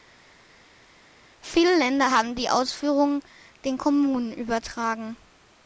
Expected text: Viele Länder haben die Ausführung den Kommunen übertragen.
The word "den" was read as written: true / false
true